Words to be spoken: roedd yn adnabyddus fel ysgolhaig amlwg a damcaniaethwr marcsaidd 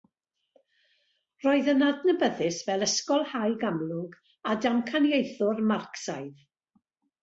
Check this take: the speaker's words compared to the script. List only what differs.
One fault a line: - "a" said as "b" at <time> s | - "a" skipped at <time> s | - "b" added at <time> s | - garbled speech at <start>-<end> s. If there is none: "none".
none